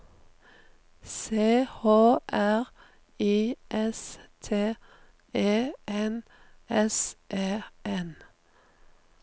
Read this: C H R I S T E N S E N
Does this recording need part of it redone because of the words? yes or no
no